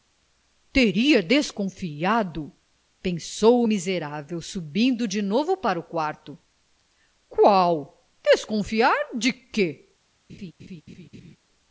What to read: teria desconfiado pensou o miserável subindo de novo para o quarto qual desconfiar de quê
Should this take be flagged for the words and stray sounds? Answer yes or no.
yes